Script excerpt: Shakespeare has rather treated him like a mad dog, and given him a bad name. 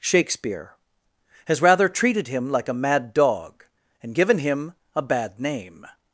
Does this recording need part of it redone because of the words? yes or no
no